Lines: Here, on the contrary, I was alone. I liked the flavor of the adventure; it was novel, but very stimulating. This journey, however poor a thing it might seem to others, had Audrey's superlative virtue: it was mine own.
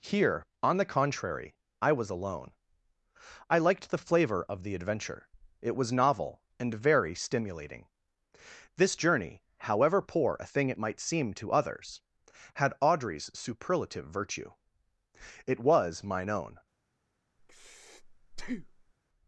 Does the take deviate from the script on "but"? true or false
true